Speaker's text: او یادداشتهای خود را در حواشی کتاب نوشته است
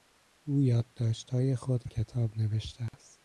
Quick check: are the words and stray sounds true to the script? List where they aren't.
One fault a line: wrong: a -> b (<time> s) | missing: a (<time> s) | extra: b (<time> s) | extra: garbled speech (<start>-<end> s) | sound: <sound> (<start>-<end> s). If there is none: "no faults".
missing: را در حواشی (1.9 s)
sound: dropout (2.9-2.9 s)